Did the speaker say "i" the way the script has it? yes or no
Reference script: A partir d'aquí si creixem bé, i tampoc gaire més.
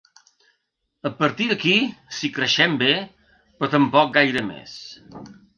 no